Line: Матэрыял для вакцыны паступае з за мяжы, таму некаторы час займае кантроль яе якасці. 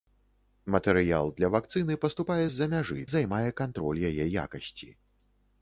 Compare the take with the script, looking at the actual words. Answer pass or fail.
fail